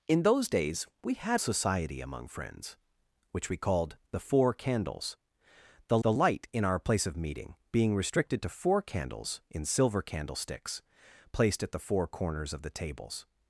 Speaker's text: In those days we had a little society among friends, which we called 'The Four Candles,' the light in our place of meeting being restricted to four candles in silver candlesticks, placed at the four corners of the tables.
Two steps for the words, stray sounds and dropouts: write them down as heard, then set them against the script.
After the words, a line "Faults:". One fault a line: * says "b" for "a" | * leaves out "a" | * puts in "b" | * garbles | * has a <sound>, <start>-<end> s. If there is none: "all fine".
In those days we had society among friends, which we called 'The Four Candles,' the the light in our place of meeting being restricted to four candles in silver candlesticks, placed at the four corners of the tables.
Faults:
* leaves out "a little"
* puts in "the"